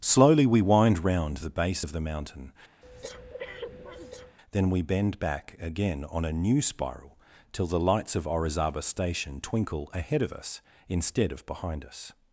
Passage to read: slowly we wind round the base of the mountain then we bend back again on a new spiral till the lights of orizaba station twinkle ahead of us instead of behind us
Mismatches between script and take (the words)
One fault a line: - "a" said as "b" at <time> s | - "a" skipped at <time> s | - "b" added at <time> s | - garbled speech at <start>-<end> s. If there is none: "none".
none